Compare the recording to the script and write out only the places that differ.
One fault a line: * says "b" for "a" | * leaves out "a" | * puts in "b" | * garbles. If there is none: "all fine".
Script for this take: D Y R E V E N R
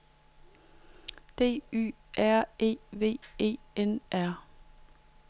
all fine